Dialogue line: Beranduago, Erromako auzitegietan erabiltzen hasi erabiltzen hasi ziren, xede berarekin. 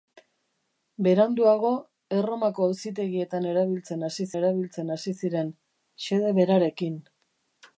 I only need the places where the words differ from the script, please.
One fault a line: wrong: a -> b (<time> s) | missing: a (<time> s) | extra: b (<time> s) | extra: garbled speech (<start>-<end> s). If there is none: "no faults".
no faults